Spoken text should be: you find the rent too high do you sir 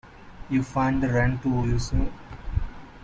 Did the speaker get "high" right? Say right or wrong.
wrong